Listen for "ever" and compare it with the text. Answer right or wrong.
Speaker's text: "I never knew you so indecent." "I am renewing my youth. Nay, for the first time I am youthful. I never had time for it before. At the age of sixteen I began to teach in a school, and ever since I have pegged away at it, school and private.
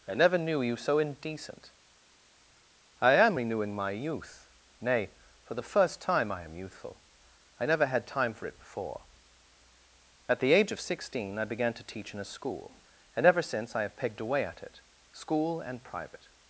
right